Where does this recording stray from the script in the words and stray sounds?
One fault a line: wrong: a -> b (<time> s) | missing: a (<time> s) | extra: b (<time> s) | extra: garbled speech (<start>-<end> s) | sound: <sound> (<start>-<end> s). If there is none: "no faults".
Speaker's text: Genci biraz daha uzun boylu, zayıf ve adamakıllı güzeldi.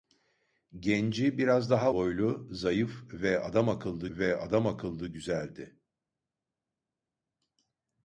missing: uzun (1.9 s)
extra: ve adamakıllı (4.1 s)